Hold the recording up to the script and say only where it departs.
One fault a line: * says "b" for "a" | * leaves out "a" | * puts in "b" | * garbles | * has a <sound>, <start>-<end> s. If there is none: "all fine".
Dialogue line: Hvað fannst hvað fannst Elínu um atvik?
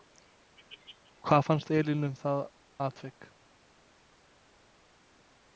* leaves out "hvað fannst"
* puts in "það"